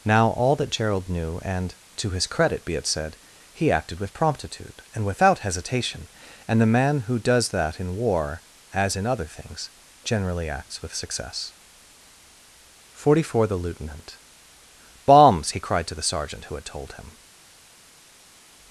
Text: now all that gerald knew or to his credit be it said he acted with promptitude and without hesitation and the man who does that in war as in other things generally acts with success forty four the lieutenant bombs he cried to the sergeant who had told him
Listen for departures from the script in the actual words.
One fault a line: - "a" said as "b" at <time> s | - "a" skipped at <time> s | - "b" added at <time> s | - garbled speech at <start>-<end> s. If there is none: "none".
- "or" said as "and" at 1.4 s